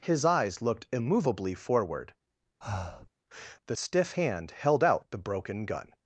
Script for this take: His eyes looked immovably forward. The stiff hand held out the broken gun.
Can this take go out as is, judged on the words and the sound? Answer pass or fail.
fail